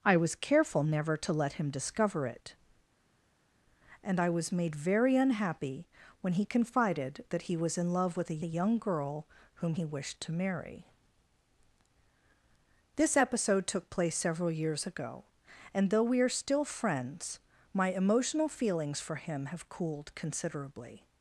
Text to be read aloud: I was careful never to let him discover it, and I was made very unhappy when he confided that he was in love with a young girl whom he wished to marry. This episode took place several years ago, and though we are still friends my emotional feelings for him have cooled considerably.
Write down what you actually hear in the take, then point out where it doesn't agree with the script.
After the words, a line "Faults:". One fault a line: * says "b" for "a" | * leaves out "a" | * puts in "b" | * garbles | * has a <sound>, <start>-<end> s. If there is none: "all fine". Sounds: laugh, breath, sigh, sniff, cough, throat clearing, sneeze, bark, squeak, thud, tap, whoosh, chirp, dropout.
I was careful never to let him discover it, and I was made very unhappy when he confided that he was in love with a a young girl whom he wished to marry. This episode took place several years ago, and though we are still friends my emotional feelings for him have cooled considerably.
Faults:
* puts in "a"